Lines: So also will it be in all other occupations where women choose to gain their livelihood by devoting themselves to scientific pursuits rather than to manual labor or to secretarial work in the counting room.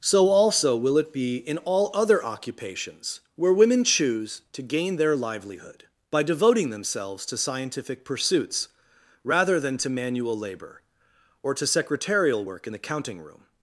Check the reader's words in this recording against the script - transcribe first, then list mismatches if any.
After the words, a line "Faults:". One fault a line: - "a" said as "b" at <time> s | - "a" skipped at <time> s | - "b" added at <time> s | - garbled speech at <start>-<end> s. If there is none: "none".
So also will it be in all other occupations where women choose to gain their livelihood by devoting themselves to scientific pursuits rather than to manual labor or to secretarial work in the counting room.
Faults:
none